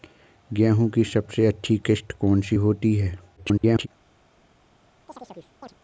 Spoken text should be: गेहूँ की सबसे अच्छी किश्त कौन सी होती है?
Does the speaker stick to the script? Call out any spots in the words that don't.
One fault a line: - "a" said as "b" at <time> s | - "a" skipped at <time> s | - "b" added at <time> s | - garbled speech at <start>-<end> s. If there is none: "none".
- garbled speech at 3.4-3.9 s